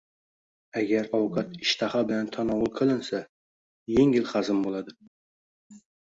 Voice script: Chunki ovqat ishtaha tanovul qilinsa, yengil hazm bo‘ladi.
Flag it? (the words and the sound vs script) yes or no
yes